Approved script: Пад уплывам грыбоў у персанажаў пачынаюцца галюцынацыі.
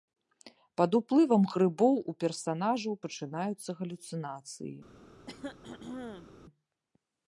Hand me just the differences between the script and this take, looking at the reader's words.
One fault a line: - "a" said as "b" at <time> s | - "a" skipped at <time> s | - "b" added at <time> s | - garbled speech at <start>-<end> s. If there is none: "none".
none